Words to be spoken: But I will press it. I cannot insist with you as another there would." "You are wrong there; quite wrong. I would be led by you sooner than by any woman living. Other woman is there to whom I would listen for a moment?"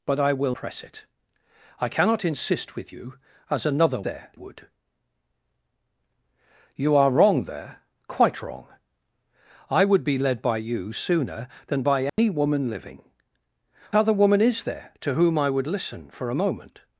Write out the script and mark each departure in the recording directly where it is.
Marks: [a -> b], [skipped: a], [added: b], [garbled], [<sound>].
But I will press it. I cannot insist with you as another there would." "You are wrong there; quite wrong. I would be led by you sooner than by any [dropout] woman living. Other woman is there to whom I would listen for a moment?"